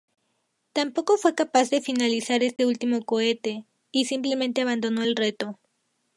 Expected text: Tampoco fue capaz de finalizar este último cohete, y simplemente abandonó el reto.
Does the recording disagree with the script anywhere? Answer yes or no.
no